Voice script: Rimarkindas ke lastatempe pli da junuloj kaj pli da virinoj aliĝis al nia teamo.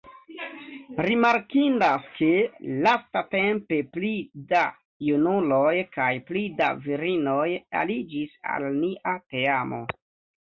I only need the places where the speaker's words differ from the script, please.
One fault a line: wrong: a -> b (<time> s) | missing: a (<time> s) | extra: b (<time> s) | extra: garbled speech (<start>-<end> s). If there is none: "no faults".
no faults